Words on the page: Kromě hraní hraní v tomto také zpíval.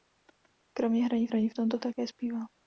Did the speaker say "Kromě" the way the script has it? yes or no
yes